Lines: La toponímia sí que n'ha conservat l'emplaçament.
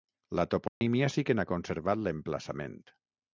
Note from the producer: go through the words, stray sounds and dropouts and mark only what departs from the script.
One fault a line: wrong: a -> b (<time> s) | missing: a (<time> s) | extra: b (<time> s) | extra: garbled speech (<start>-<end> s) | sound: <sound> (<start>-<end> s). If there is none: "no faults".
sound: dropout (0.7-0.8 s)